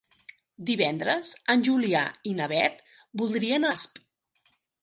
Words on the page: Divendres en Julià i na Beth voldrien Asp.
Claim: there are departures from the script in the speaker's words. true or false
false